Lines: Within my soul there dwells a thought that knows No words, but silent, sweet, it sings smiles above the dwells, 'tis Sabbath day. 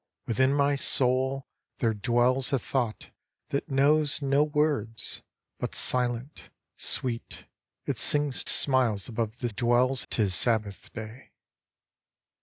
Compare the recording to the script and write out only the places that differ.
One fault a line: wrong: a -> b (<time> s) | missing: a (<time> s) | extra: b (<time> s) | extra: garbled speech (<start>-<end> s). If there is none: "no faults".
no faults